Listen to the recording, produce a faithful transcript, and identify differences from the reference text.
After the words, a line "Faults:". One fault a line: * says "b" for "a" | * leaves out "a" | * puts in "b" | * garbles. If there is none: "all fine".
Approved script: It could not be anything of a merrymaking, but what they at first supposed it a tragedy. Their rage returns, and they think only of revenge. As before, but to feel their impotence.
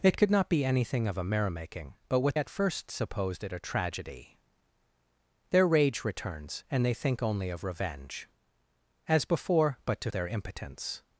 It could not be anything of a merrymaking, but what at first supposed it a tragedy. Their rage returns, and they think only of revenge. As before, but to their impotence.
Faults:
* leaves out "they"
* leaves out "feel"